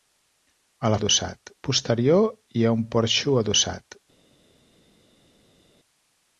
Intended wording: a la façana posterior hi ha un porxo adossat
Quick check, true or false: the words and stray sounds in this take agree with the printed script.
false